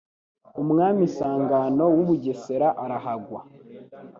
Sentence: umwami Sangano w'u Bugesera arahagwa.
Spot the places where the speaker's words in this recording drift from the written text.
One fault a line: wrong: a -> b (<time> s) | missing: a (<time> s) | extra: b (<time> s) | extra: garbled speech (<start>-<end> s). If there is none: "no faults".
no faults